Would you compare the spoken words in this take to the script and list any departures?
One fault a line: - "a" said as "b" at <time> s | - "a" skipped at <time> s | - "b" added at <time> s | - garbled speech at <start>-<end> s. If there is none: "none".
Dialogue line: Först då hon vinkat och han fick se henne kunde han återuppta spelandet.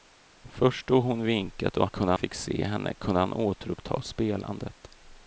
- "han" said as "kunde" at 1.9 s